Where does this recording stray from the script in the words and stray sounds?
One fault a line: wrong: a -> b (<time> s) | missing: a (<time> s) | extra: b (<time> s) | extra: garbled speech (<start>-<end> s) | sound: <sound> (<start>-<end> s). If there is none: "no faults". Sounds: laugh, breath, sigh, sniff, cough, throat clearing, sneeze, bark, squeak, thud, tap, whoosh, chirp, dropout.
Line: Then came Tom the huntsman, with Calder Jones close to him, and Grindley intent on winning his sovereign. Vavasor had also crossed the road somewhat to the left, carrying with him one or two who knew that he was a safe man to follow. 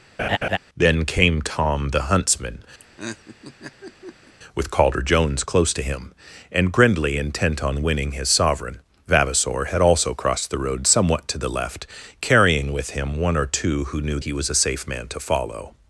sound: laugh (0.2-0.6 s)
sound: laugh (2.8-4.3 s)
missing: that (14.2 s)